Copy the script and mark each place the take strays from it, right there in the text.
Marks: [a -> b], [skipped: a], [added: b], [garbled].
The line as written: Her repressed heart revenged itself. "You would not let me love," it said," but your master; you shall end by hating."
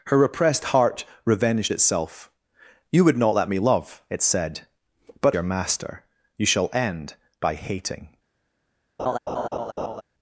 Her repressed heart revenged itself. "You would not let me love," it said," but your master; you shall end by hating."